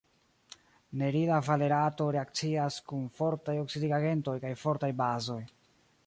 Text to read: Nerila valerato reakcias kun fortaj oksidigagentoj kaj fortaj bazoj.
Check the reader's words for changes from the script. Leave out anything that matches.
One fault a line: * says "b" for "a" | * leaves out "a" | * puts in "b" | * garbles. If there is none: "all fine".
all fine